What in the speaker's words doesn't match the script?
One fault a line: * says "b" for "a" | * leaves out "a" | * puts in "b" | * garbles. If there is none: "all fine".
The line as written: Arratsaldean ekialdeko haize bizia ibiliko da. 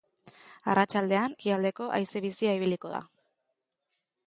all fine